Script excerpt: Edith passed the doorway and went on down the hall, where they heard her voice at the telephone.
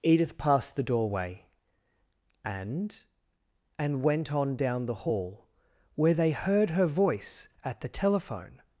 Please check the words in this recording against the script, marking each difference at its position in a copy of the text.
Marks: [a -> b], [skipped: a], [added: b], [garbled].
Edith passed the doorway and [added: and] went on down the hall, where they heard her voice at the telephone.